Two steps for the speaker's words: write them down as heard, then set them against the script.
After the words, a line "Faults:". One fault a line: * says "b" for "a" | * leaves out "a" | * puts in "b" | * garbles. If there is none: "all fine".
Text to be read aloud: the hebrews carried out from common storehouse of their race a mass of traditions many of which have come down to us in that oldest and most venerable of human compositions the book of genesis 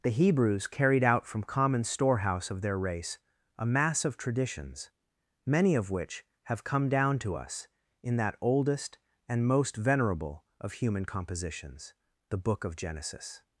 the hebrews carried out from common storehouse of their race a mass of traditions many of which have come down to us in that oldest and most venerable of human compositions the book of genesis
Faults:
all fine